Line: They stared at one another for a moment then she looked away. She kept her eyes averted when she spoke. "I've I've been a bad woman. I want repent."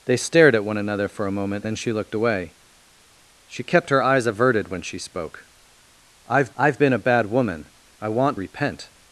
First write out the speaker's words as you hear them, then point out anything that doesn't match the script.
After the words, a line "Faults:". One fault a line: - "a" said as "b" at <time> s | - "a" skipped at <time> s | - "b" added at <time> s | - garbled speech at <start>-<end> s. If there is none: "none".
They stared at one another for a moment then she looked away. She kept her eyes averted when she spoke. "I've I've been a bad woman. I want repent."
Faults:
none